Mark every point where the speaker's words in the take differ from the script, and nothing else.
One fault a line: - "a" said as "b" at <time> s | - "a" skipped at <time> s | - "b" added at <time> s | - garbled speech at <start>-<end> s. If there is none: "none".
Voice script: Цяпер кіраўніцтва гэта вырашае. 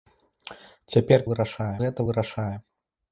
- "кіраўніцтва" said as "вырашае" at 1.3 s